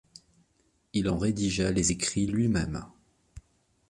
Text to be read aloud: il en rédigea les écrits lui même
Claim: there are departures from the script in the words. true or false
false